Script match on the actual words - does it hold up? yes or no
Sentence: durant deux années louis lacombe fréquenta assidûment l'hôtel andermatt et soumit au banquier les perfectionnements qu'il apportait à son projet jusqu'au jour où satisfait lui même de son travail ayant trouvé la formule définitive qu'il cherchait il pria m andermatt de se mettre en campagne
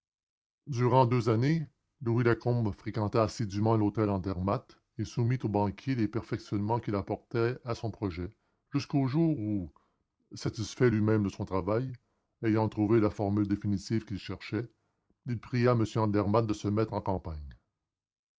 yes